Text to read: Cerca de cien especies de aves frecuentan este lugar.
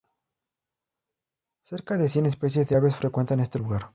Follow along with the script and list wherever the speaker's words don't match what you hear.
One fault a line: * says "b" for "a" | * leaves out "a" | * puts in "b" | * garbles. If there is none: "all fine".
all fine